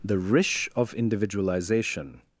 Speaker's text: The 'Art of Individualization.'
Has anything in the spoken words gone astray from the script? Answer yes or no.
yes